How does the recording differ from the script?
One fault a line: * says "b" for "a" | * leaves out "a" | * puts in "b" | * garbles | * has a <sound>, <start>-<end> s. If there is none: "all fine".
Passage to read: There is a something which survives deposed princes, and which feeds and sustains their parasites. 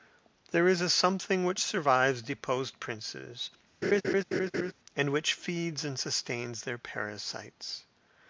* has a laugh, 3.8-4.7 s